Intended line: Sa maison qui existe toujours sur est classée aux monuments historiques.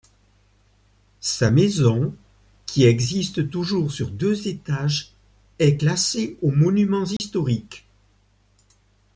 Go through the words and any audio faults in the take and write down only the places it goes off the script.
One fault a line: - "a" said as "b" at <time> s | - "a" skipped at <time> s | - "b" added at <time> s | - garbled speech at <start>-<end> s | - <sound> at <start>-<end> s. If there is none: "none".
- "deux étages" added at 4.1 s
- dropout at 7.2-7.2 s